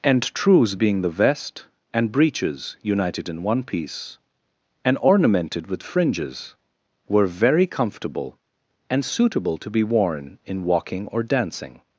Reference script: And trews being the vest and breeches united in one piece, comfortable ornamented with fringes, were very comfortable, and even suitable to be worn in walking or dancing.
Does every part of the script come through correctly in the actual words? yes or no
no